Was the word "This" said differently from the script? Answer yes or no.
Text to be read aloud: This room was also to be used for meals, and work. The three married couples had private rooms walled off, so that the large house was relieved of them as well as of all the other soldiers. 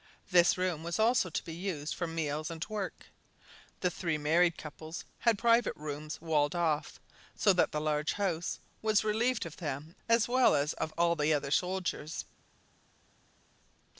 no